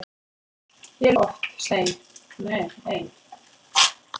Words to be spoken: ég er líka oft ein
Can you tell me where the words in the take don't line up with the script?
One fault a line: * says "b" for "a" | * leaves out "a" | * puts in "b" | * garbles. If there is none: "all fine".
* leaves out "líka"